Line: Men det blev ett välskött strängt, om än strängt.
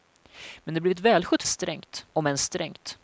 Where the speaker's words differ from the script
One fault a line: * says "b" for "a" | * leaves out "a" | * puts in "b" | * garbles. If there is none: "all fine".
all fine